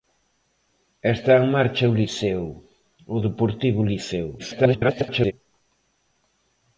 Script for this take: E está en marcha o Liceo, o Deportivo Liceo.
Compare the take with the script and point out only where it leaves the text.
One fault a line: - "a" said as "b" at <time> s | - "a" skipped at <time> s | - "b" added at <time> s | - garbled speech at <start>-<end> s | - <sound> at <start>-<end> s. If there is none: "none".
- garbled speech at 4.4-5.3 s